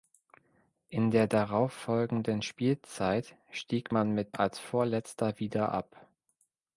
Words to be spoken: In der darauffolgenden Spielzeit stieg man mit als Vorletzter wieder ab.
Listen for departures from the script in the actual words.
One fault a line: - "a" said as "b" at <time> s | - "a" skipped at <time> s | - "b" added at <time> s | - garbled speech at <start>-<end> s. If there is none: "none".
none